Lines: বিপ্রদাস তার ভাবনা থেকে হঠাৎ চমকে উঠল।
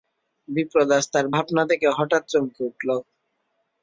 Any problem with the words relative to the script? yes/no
no